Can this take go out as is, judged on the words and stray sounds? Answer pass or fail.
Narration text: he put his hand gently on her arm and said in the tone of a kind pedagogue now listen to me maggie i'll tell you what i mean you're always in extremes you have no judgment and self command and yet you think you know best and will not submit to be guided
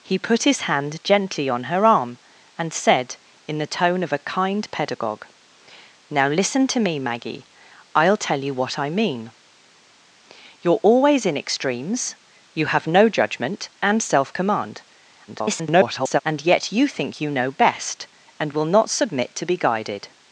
fail